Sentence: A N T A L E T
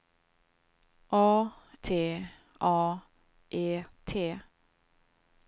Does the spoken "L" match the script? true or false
false